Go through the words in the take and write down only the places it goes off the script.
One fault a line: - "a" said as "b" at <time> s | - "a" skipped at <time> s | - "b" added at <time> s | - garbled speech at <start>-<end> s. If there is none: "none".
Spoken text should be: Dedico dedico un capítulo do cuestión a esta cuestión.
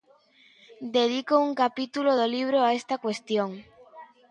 - "dedico" skipped at 1.3 s
- "cuestión" said as "libro" at 2.3 s